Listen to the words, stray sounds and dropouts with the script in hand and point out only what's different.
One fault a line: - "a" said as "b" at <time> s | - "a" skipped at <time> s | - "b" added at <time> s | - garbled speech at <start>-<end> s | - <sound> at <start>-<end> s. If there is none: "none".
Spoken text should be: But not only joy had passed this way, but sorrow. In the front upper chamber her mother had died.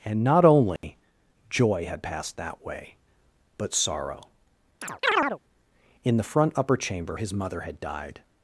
- "But" said as "And" at 0.0 s
- dropout at 0.8-0.8 s
- "this" said as "that" at 2.4 s
- chirp at 4.8-5.4 s
- "her" said as "his" at 7.1 s